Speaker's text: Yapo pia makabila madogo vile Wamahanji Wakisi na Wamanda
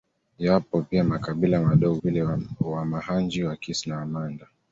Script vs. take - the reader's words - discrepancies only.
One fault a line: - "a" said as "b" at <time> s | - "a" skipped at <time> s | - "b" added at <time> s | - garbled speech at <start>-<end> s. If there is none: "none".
none